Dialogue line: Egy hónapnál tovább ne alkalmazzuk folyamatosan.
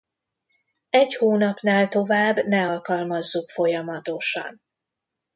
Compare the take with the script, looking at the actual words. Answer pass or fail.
pass